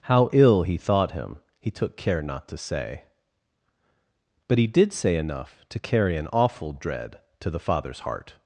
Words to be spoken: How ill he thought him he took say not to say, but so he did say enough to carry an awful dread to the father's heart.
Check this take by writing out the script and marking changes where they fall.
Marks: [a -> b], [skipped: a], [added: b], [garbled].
How ill he thought him he took [say -> care] not to say, but [skipped: so] he did say enough to carry an awful dread to the father's heart.